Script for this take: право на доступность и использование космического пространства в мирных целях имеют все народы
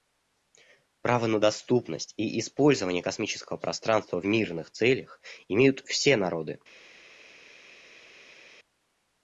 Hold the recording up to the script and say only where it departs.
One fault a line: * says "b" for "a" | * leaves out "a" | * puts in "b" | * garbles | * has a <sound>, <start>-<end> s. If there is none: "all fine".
all fine